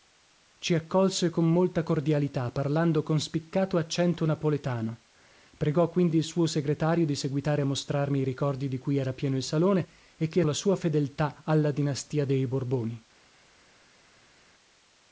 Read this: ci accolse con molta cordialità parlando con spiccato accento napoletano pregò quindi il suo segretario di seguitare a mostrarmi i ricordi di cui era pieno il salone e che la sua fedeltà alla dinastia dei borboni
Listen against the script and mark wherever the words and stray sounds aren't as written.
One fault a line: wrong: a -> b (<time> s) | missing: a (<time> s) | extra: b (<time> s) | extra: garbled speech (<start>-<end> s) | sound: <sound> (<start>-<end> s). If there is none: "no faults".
no faults